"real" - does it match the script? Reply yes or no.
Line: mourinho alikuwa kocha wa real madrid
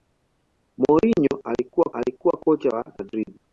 no